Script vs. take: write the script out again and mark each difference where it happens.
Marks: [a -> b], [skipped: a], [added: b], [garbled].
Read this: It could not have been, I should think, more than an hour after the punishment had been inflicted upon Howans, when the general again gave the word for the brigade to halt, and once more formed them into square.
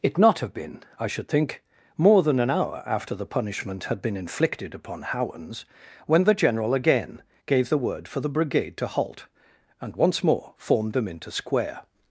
It [skipped: could] not have been, I should think, more than an hour after the punishment had been inflicted upon Howans, when the general again gave the word for the brigade to halt, and once more formed them into square.